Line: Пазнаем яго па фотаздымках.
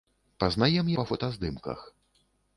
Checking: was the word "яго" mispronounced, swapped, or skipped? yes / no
yes